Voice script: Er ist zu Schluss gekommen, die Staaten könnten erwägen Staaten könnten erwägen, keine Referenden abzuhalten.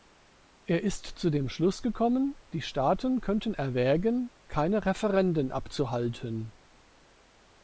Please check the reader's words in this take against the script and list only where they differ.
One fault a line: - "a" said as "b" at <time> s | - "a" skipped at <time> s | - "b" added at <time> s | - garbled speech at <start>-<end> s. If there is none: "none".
- "dem" added at 1.3 s
- "Staaten könnten erwägen" skipped at 4.3 s